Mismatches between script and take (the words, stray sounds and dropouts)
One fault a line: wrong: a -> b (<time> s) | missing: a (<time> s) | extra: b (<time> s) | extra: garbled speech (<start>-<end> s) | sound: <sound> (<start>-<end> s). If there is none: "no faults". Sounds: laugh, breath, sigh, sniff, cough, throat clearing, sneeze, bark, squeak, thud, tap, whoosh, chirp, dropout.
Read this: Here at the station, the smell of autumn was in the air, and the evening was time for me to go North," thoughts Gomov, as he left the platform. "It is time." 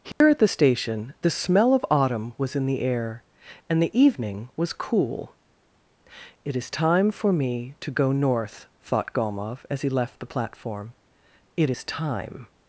sound: dropout (0.1-0.2 s)
extra: cool It is (4.7 s)
wrong: thoughts -> thought (8.8 s)